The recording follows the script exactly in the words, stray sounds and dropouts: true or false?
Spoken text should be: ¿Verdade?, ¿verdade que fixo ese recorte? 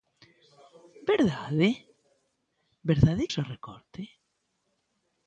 false